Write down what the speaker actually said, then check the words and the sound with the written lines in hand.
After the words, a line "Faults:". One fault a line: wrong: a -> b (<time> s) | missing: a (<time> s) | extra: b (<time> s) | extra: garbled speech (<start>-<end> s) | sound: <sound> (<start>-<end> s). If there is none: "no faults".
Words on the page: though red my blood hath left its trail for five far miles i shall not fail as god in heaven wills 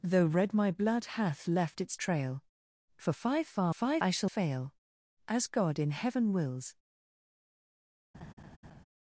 though red my blood hath left its trail for five far five i shall fail as god in heaven wills
Faults:
wrong: miles -> five (3.7 s)
missing: not (4.3 s)
sound: laugh (8.1-8.8 s)